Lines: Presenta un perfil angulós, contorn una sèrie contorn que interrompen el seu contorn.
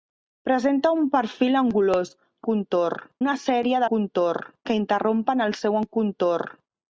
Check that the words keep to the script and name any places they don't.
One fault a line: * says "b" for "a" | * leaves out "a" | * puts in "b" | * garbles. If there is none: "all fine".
all fine